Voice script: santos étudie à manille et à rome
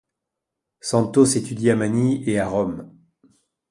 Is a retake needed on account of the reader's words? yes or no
no